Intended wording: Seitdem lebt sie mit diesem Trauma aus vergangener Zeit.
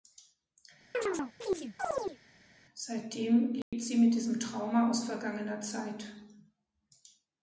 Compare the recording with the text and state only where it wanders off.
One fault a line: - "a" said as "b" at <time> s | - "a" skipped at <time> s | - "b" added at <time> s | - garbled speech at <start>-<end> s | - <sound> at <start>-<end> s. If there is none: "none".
- chirp at 0.9-2.2 s
- dropout at 3.6-3.7 s